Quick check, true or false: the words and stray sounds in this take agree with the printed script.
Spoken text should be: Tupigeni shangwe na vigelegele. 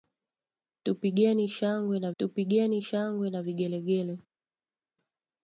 false